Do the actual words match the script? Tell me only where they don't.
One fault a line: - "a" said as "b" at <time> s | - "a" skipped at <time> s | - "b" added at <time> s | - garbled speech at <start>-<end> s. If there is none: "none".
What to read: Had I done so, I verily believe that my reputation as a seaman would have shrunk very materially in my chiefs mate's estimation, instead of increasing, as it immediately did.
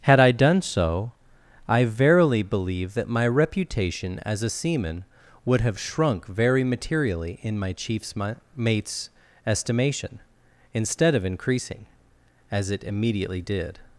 none